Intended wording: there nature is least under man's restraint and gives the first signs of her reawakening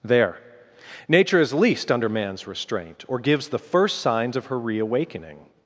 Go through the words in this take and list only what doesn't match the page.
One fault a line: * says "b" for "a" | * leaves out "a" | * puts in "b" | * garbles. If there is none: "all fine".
* says "or" for "and"